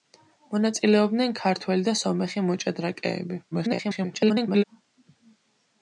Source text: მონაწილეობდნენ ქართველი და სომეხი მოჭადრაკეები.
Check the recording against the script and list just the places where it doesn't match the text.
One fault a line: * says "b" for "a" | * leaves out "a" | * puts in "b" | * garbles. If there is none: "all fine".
* garbles